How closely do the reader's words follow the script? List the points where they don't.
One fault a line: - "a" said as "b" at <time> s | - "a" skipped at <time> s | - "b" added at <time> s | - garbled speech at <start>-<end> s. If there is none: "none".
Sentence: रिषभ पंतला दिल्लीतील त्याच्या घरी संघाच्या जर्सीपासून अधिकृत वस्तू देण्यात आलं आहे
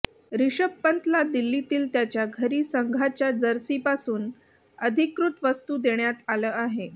none